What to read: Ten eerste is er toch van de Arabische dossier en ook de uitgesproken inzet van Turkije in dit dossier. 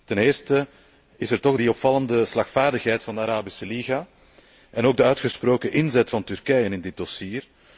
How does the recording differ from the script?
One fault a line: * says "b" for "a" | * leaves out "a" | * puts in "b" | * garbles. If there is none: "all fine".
* puts in "die opvallende slagvaardigheid"
* says "liga" for "dossier"